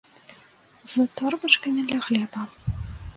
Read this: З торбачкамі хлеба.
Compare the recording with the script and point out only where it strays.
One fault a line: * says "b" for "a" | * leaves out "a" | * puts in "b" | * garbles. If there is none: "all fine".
* puts in "для"